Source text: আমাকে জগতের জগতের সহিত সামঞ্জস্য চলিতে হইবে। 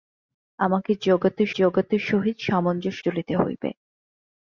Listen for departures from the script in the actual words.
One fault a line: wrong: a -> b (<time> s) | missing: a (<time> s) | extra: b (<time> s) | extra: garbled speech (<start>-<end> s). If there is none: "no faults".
no faults